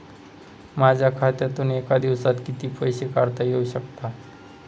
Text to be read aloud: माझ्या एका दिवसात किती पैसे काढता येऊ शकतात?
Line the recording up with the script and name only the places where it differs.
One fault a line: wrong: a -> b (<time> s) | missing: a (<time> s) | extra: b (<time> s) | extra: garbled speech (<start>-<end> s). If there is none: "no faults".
extra: खात्यातून (1.1 s)